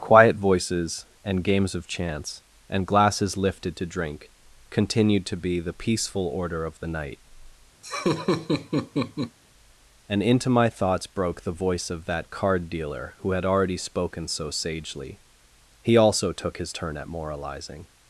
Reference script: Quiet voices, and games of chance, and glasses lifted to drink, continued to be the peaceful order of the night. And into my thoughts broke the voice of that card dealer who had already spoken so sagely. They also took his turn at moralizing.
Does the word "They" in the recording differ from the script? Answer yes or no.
yes